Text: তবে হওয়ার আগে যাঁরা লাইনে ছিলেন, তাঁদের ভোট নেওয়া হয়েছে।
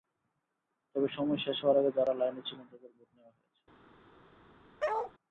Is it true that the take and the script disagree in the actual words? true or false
true